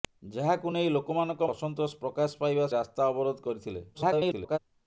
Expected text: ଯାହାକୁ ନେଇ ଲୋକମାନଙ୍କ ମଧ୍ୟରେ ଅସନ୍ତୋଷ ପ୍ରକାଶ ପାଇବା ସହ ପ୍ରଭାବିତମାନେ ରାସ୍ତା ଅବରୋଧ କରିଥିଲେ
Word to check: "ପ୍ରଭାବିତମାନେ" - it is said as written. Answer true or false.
false